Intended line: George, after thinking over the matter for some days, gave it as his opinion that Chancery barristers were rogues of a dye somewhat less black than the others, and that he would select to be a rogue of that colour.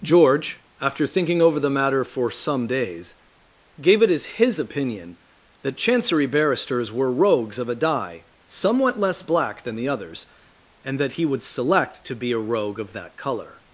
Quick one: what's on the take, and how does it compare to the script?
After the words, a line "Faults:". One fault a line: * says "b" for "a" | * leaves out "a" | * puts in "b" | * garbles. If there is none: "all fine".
George, after thinking over the matter for some days, gave it as his opinion that Chancery barristers were rogues of a dye somewhat less black than the others, and that he would select to be a rogue of that colour.
Faults:
all fine